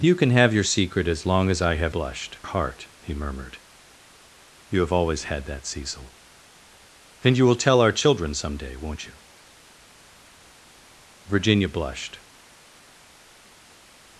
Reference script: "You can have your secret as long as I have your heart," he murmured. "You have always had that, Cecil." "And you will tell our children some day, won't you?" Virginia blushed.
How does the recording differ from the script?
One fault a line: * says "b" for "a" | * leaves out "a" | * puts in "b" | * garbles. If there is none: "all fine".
* says "blushed" for "your"